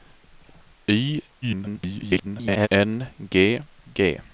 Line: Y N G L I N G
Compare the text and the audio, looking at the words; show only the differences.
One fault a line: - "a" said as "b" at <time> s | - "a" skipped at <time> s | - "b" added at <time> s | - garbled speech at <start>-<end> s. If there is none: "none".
- garbled speech at 1.4-2.7 s
- "L I N" skipped at 3.6 s